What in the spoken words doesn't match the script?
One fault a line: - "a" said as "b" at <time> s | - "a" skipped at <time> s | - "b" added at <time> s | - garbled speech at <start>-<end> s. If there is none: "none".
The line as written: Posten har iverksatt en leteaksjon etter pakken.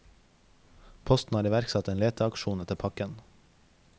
none